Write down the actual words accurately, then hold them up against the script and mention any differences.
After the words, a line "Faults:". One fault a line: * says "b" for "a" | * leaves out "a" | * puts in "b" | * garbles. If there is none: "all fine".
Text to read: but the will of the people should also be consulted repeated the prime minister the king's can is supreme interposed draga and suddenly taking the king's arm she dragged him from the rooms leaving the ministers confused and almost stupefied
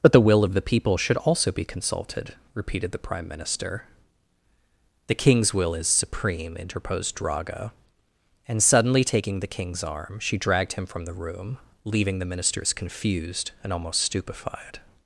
but the will of the people should also be consulted repeated the prime minister the king's will is supreme interposed draga and suddenly taking the king's arm she dragged him from the room leaving the ministers confused and almost stupefied
Faults:
* says "will" for "can"
* says "room" for "rooms"